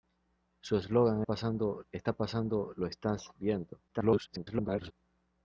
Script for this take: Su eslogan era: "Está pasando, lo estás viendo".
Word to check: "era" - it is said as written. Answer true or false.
false